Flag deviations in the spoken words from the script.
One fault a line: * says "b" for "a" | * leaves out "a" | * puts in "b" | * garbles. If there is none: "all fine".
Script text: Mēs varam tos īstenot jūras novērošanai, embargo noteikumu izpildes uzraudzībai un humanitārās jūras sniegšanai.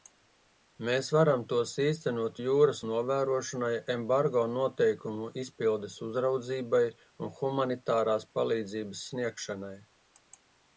* says "palīdzības" for "jūras"